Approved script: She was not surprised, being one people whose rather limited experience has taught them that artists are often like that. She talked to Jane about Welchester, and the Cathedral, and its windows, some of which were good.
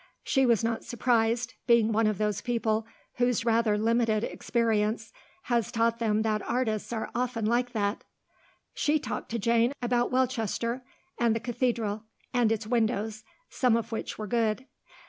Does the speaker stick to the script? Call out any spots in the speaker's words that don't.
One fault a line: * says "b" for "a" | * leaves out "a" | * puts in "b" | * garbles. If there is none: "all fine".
* puts in "of those"